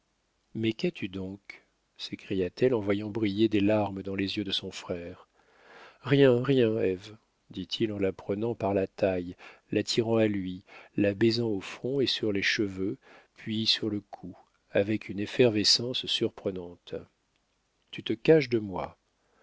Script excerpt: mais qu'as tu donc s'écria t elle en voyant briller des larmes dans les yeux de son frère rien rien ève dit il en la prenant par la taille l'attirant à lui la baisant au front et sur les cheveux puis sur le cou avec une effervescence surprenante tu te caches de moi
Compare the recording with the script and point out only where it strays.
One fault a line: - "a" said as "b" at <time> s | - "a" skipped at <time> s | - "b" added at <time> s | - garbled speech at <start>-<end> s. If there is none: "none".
none